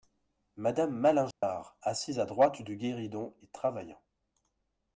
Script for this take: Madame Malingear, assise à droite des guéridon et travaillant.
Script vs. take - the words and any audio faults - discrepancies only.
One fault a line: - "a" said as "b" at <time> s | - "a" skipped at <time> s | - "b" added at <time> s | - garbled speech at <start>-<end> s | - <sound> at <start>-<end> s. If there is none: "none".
- dropout at 1.3-1.4 s
- "des" said as "du" at 2.6 s